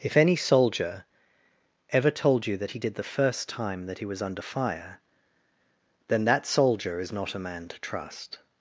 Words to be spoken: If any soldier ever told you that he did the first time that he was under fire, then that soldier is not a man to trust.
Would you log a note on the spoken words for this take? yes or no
no